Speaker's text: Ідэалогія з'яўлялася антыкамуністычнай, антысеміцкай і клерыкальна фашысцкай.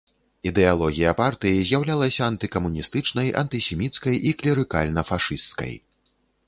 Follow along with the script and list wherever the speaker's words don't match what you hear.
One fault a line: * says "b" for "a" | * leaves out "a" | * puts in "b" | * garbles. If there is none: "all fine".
* puts in "партыі"